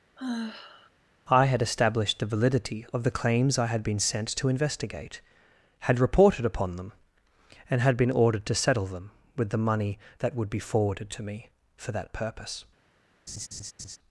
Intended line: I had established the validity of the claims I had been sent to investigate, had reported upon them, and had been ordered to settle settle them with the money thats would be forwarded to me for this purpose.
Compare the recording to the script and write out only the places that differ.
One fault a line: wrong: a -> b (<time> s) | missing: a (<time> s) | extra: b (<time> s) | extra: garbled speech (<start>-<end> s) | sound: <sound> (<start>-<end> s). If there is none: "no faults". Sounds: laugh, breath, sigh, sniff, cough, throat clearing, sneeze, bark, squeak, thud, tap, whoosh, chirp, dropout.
sound: sigh (0.2-0.9 s)
missing: settle (8.9 s)
wrong: thats -> that (10.2 s)
wrong: this -> that (11.9 s)
sound: laugh (13.3-14.0 s)